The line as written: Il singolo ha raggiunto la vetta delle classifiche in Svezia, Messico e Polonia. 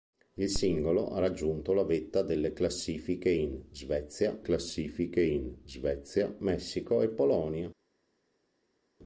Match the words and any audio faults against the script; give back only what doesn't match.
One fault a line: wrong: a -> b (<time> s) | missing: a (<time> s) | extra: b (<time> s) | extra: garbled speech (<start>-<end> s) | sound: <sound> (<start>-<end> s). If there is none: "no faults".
extra: classifiche in Svezia (4.4 s)